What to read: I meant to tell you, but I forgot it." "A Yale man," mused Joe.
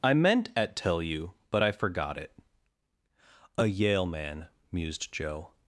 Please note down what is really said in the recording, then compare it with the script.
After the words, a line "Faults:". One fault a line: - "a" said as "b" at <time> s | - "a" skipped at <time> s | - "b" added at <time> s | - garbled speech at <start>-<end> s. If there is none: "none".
I meant at tell you, but I forgot it." "A Yale man," mused Joe.
Faults:
- "to" said as "at" at 0.6 s